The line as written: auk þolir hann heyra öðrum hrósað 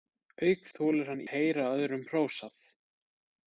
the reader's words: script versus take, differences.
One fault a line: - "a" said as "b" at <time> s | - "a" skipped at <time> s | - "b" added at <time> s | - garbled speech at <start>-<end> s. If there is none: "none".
none